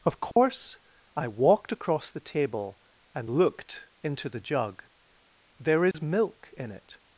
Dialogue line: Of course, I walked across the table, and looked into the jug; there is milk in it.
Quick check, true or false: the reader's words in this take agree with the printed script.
true